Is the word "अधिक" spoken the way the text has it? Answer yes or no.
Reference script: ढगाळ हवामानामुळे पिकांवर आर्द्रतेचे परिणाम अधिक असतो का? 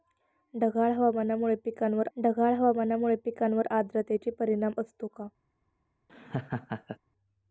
no